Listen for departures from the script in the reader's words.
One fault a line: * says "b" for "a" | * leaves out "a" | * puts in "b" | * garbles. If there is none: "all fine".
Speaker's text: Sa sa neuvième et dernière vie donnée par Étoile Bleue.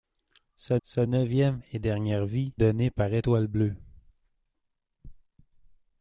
all fine